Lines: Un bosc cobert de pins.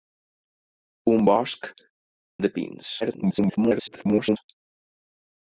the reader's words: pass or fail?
fail